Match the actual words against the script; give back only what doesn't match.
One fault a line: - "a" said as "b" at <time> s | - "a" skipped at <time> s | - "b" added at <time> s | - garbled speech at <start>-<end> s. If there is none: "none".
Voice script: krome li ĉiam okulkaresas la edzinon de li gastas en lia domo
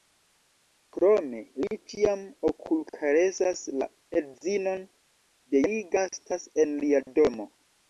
none